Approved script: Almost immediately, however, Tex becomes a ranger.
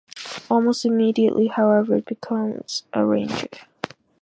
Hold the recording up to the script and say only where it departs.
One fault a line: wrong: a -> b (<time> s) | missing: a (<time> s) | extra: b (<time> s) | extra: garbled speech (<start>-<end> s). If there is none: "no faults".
missing: Tex (2.0 s)